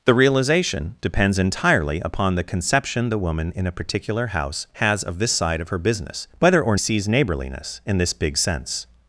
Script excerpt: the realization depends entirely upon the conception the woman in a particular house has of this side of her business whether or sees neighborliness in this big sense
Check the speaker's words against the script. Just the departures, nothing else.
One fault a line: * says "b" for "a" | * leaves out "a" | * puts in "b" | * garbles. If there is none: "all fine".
all fine